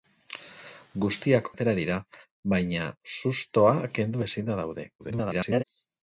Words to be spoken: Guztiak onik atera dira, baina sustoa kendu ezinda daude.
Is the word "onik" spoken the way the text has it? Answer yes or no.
no